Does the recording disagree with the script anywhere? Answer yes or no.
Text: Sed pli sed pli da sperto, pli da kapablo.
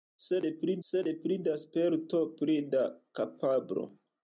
no